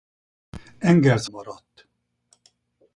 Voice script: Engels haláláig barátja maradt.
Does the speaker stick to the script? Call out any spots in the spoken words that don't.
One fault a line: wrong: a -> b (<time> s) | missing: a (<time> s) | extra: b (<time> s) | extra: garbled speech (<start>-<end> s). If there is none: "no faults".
missing: haláláig barátja (1.3 s)